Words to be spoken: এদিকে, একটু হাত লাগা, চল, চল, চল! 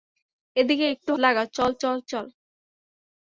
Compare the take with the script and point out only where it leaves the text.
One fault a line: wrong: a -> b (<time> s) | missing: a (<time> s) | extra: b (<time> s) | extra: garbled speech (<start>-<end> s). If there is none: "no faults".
missing: হাত (1.1 s)